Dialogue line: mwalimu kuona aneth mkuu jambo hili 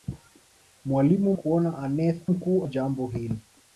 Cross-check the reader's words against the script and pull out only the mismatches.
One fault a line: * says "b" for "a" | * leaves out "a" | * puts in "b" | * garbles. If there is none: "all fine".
all fine